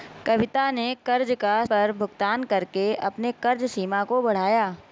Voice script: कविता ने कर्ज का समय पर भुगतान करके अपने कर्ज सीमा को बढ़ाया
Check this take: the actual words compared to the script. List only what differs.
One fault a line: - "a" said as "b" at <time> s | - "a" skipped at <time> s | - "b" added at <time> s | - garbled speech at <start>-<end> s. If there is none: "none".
- "समय" skipped at 1.6 s